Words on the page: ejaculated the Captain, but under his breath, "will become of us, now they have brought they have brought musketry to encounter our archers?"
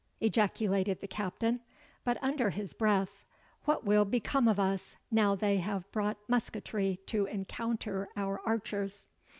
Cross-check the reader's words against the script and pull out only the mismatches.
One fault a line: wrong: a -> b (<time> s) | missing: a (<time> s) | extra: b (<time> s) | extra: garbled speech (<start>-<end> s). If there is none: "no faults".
extra: what (3.6 s)
missing: they have brought (6.2 s)